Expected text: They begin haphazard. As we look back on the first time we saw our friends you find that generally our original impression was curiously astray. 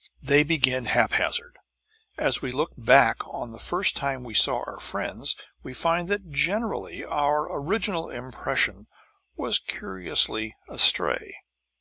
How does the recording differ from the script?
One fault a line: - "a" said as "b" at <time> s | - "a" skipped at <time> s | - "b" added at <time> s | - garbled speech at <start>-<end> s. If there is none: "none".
- "you" said as "we" at 5.6 s